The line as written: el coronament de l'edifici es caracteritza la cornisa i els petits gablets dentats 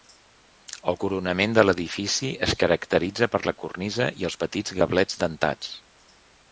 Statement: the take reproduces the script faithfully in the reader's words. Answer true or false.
false